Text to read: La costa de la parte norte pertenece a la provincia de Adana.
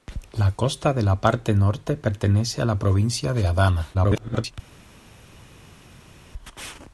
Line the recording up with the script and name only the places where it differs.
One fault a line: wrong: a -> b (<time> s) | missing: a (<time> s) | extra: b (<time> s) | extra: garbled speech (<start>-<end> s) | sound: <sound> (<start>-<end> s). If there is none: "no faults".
extra: garbled speech (3.9-4.5 s)